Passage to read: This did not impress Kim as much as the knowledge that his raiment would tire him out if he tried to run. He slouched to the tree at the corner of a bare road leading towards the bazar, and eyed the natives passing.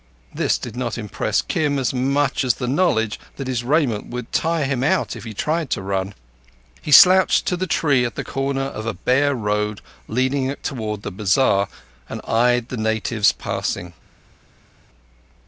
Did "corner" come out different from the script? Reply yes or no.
no